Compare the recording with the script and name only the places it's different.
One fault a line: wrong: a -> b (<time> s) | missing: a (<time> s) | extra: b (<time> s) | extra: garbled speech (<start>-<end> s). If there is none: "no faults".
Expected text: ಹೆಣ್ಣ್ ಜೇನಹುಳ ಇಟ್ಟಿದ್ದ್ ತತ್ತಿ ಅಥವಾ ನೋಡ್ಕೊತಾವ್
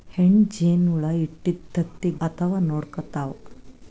no faults